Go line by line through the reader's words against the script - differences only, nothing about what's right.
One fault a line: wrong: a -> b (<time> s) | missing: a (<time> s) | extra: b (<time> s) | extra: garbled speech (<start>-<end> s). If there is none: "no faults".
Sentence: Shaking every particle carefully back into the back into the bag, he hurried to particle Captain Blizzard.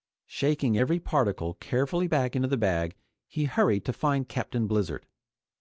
missing: back into the (2.6 s)
wrong: particle -> find (3.9 s)